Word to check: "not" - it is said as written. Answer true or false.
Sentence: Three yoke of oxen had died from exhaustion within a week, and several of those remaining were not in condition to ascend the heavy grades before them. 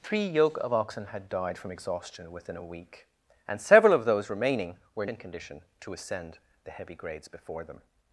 false